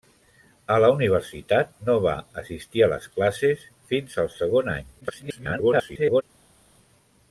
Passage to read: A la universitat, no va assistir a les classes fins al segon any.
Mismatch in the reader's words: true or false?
true